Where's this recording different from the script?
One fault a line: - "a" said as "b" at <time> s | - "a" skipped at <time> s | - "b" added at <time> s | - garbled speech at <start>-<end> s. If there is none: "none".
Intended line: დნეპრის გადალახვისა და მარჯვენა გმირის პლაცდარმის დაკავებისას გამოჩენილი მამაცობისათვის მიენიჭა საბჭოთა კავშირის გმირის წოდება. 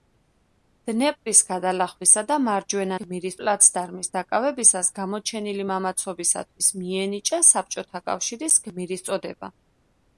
none